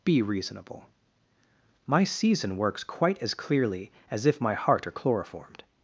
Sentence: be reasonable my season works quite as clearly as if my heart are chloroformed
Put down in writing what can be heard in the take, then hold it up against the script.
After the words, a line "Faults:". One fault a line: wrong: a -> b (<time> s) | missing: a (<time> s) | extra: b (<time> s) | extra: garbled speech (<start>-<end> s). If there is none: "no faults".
be reasonable my season works quite as clearly as if my heart are chloroformed
Faults:
no faults